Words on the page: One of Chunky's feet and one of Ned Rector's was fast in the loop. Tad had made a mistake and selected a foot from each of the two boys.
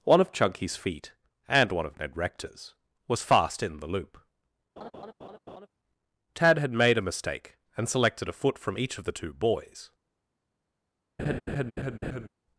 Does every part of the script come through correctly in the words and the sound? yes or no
no